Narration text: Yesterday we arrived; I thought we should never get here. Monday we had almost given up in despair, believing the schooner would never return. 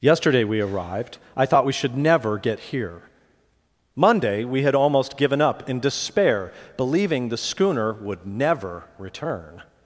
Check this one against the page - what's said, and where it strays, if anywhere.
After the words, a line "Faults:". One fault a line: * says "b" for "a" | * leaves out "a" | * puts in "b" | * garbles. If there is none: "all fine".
Yesterday we arrived; I thought we should never get here. Monday we had almost given up in despair, believing the schooner would never return.
Faults:
all fine